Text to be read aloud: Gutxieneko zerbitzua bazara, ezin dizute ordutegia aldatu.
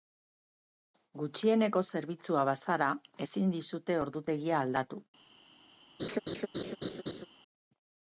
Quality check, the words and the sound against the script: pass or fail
fail